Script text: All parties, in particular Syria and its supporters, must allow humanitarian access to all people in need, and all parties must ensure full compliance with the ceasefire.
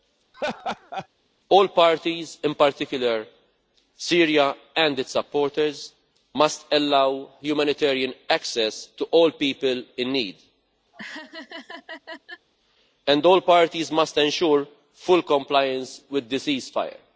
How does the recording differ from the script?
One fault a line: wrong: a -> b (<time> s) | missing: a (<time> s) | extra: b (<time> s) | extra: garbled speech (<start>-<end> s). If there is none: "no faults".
no faults